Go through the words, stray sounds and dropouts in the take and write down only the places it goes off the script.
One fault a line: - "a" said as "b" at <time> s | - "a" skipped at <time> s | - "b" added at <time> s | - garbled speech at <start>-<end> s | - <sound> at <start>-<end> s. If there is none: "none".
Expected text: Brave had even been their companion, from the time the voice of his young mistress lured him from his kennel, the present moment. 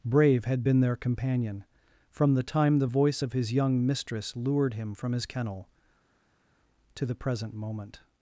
- "even" skipped at 0.7 s
- "to" added at 7.0 s